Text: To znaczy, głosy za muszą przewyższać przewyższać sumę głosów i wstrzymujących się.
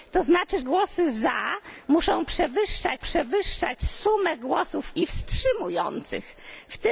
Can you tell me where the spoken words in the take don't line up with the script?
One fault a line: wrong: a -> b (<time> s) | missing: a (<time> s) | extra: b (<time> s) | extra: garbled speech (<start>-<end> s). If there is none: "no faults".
no faults